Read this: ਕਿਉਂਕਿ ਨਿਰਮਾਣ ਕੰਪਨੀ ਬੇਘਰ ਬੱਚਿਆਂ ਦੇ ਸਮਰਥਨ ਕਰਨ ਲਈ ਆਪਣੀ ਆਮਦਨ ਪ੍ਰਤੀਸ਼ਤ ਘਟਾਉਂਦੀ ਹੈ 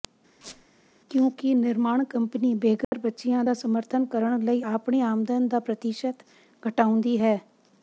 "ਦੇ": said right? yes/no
no